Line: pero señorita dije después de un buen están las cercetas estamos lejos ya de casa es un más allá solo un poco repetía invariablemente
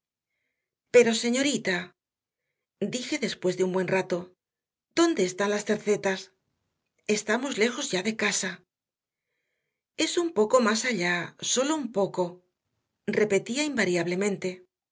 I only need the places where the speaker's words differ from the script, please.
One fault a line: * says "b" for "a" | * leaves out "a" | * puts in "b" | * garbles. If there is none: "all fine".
* puts in "rato dónde"
* puts in "poco"